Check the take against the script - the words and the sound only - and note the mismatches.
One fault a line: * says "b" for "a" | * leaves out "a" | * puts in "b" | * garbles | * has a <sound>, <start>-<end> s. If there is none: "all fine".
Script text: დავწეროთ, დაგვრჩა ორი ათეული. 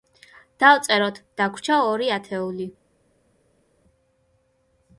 all fine